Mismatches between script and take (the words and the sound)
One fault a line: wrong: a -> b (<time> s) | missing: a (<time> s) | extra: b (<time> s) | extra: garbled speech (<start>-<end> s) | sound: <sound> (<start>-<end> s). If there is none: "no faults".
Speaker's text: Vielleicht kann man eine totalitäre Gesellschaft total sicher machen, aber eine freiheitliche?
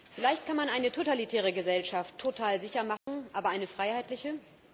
sound: dropout (3.0-3.1 s)